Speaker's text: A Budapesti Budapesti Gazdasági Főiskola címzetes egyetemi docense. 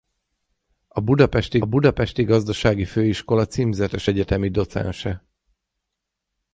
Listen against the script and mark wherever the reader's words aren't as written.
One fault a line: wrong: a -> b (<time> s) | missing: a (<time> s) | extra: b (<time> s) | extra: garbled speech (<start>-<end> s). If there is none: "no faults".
no faults